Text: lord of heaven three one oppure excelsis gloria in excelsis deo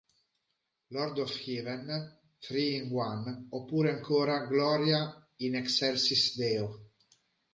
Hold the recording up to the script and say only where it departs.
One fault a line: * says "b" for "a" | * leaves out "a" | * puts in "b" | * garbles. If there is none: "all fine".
* puts in "in"
* says "ancora" for "excelsis"